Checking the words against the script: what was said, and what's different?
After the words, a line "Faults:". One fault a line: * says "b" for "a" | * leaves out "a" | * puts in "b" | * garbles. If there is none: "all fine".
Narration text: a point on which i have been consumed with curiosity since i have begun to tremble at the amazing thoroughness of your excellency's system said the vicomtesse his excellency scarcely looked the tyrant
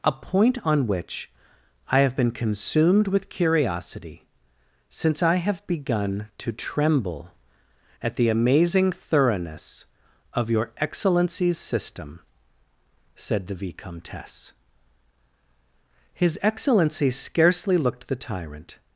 a point on which i have been consumed with curiosity since i have begun to tremble at the amazing thoroughness of your excellency's system said the vicomtesse his excellency scarcely looked the tyrant
Faults:
all fine